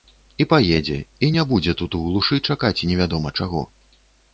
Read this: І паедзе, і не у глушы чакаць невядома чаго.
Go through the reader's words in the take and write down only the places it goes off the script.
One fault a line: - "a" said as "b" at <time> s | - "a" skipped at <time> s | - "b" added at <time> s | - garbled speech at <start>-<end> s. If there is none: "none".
- "будзе тут" added at 1.5 s